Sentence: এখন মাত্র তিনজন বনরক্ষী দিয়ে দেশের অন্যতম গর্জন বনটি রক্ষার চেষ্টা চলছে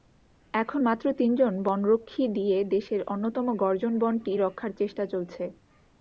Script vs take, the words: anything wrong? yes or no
no